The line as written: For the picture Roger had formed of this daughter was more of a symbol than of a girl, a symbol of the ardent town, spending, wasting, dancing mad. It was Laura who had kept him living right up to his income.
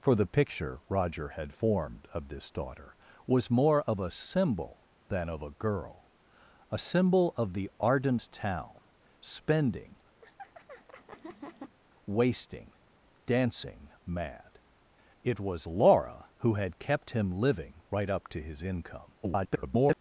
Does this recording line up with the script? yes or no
no